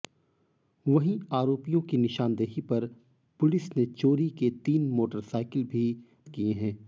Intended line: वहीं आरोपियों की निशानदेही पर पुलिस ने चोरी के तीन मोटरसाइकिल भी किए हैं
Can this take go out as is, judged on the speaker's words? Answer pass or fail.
pass